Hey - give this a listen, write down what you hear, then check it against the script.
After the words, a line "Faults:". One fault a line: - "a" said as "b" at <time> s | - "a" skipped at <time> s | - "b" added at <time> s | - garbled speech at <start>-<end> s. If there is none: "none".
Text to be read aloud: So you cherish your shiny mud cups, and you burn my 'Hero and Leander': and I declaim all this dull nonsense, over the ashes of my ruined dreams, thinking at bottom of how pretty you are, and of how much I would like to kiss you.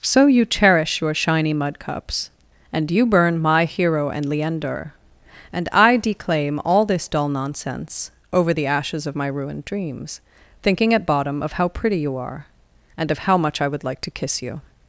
So you cherish your shiny mud cups, and you burn my 'Hero and Leander': and I declaim all this dull nonsense, over the ashes of my ruined dreams, thinking at bottom of how pretty you are, and of how much I would like to kiss you.
Faults:
none